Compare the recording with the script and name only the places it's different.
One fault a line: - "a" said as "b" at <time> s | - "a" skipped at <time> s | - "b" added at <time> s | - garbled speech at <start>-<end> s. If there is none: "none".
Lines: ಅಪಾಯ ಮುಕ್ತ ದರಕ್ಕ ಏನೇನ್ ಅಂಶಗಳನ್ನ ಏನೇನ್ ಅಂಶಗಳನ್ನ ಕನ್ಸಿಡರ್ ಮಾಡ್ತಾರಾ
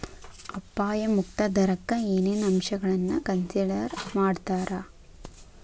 - "ಏನೇನ್ ಅಂಶಗಳನ್ನ" skipped at 3.2 s